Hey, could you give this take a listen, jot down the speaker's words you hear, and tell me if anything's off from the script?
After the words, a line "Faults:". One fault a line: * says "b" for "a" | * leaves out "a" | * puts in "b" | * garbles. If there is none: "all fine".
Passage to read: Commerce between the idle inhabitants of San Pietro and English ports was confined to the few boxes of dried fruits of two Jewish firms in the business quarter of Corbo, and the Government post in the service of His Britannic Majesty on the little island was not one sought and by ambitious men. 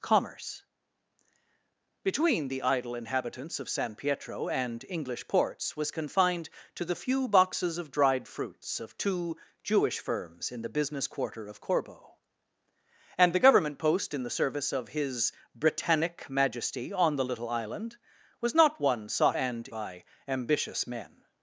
Commerce between the idle inhabitants of San Pietro and English ports was confined to the few boxes of dried fruits of two Jewish firms in the business quarter of Corbo, and the Government post in the service of His Britannic Majesty on the little island was not one sought and by ambitious men.
Faults:
all fine